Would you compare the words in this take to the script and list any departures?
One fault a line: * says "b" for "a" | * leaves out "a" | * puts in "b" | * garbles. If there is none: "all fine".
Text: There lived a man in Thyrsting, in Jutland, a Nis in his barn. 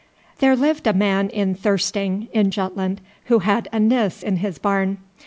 * puts in "who had"